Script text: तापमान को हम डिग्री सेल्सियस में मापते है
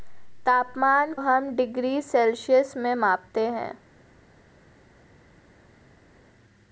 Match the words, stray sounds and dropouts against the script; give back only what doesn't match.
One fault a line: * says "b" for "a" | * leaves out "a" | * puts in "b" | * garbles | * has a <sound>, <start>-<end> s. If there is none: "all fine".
* leaves out "को"